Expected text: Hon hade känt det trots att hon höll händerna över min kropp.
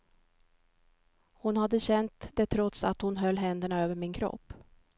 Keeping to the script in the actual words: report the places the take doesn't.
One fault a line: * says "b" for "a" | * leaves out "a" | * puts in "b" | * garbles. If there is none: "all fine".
all fine